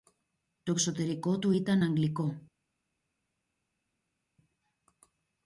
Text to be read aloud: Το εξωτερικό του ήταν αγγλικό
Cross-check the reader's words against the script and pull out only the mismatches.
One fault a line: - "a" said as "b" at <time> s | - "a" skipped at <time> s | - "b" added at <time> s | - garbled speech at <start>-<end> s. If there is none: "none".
none